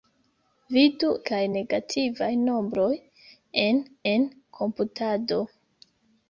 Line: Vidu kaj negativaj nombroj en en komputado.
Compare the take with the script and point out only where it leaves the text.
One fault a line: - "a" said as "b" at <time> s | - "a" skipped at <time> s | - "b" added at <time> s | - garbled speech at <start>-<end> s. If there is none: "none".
none